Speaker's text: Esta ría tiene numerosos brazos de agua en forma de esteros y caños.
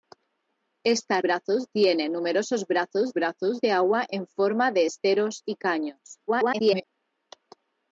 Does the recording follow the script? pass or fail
fail